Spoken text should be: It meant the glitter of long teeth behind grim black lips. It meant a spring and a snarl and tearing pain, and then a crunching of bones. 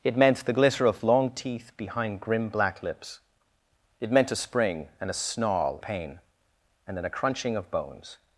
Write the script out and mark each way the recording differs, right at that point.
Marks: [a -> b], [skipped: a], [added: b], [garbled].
It meant the glitter of long teeth behind grim black lips. It meant a spring and a snarl [skipped: and tearing] pain, and then a crunching of bones.